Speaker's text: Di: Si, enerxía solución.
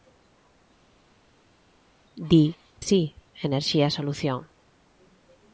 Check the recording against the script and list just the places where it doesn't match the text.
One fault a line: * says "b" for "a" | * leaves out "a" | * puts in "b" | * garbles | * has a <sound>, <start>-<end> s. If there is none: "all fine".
all fine